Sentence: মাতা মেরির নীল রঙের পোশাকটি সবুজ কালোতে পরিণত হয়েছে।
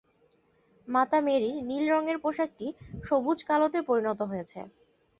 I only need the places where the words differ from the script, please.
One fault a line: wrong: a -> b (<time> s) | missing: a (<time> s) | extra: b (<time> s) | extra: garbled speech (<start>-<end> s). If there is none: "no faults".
no faults